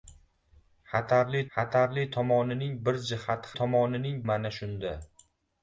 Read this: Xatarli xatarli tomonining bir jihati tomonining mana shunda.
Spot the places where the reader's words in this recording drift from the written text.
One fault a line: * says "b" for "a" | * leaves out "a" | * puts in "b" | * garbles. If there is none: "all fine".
all fine